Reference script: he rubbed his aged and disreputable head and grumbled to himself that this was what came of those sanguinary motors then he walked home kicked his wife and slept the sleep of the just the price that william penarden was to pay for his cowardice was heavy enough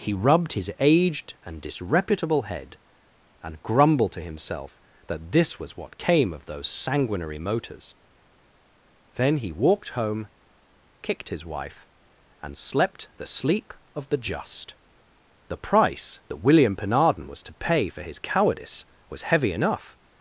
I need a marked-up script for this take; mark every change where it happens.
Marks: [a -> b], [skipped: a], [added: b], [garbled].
he rubbed his aged and disreputable head and grumbled to himself that this was what came of those sanguinary motors then he walked home kicked his wife and slept the sleep of the just the price that william penarden was to pay for his cowardice was heavy enough